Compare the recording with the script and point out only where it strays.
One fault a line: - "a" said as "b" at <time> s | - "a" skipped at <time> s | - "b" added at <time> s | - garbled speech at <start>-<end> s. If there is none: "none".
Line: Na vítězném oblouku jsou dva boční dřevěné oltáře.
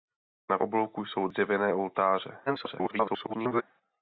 - "vítězném" skipped at 0.6 s
- "dva boční" skipped at 1.3 s
- garbled speech at 2.5-3.6 s